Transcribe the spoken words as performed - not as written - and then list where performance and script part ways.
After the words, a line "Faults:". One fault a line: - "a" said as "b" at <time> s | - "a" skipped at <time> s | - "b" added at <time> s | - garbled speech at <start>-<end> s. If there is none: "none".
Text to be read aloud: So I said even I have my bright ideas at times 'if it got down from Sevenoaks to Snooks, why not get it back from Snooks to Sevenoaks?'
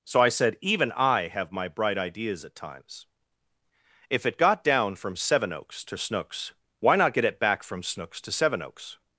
So I said even I have my bright ideas at times 'if it got down from Sevenoaks to Snooks, why not get it back from Snooks to Sevenoaks?'
Faults:
none